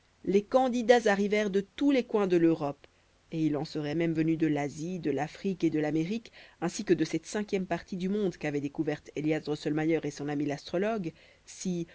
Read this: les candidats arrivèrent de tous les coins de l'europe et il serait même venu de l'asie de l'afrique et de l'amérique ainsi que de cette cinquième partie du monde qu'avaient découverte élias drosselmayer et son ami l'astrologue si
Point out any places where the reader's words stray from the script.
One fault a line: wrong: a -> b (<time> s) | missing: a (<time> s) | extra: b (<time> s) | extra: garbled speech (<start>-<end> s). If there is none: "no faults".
extra: en (3.5 s)